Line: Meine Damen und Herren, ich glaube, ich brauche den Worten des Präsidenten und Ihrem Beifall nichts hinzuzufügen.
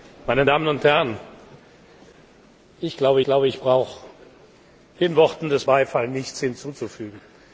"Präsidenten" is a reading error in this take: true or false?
true